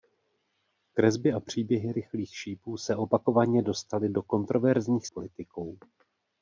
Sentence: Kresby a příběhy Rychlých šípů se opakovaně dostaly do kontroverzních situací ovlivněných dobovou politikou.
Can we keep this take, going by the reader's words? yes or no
no